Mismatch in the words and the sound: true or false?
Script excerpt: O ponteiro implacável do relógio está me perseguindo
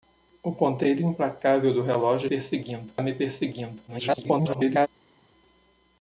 true